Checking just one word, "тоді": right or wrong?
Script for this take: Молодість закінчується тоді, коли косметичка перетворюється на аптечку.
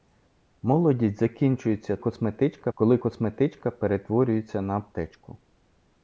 wrong